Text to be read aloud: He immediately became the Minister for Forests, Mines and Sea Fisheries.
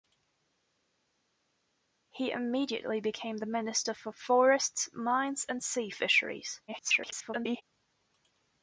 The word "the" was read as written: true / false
true